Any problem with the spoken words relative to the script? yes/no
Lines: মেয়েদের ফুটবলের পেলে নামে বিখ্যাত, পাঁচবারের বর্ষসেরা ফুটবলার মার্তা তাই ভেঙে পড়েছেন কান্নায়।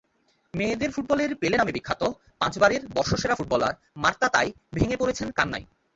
no